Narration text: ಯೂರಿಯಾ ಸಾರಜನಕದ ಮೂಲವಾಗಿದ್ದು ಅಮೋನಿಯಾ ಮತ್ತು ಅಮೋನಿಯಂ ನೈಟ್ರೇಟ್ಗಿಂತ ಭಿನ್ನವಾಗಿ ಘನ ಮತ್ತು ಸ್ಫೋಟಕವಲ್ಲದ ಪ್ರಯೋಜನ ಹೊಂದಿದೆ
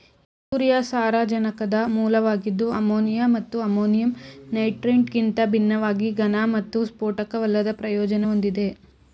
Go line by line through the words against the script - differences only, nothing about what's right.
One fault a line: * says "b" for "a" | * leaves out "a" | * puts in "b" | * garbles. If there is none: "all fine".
all fine